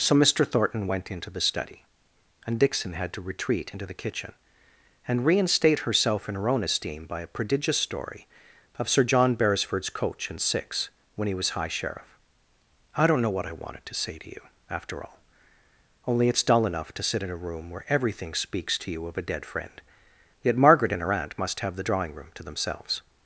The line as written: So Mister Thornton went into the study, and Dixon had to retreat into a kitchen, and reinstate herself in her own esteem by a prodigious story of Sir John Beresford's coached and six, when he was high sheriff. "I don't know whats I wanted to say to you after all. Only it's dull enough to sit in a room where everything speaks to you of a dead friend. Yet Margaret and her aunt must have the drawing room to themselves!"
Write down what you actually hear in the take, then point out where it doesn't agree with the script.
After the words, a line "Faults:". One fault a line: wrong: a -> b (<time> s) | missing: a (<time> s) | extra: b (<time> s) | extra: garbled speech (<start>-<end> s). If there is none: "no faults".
So Mister Thornton went into the study, and Dixon had to retreat into the kitchen, and reinstate herself in her own esteem by a prodigious story of Sir John Beresford's coach and six, when he was high sheriff. "I don't know what I wanted to say to you after all. Only it's dull enough to sit in a room where everything speaks to you of a dead friend. Yet Margaret and her aunt must have the drawing room to themselves!"
Faults:
wrong: a -> the (3.9 s)
wrong: coached -> coach (9.9 s)
wrong: whats -> what (13.3 s)